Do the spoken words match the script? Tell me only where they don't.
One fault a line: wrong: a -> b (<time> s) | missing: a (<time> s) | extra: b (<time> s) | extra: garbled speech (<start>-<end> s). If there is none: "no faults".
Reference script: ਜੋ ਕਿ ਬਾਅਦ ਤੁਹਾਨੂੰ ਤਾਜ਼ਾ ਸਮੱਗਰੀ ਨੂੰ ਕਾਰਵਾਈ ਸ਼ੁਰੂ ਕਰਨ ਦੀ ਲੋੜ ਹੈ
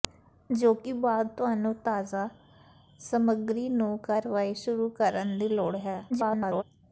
extra: garbled speech (6.1-6.6 s)